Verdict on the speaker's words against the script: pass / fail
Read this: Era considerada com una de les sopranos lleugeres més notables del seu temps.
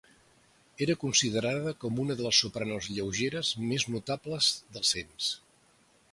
fail